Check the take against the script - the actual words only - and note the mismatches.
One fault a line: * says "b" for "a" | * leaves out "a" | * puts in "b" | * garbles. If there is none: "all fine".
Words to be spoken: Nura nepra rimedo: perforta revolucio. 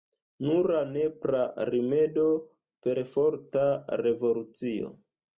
all fine